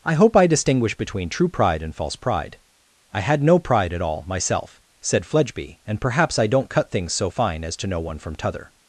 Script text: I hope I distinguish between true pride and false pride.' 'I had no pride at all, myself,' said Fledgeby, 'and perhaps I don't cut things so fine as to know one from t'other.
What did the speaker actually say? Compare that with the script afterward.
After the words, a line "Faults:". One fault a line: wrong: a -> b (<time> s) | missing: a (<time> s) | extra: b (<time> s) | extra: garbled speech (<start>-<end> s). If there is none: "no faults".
I hope I distinguish between true pride and false pride.' 'I had no pride at all, myself,' said Fledgeby, 'and perhaps I don't cut things so fine as to know one from t'other.
Faults:
no faults